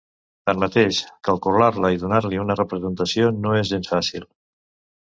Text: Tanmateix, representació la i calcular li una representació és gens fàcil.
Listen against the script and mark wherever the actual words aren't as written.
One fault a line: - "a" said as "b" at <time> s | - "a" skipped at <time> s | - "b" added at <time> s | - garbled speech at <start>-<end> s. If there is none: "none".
- "representació" said as "calcular" at 1.3 s
- "calcular" said as "donar" at 2.1 s
- "no" added at 3.4 s